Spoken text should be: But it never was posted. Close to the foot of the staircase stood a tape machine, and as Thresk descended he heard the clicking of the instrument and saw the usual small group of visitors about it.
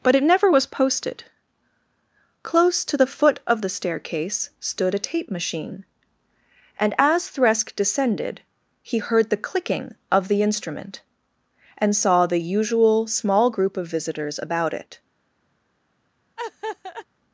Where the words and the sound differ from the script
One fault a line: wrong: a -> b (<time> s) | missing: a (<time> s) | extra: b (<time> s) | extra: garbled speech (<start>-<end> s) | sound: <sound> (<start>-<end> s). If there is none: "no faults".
sound: laugh (16.4-17.1 s)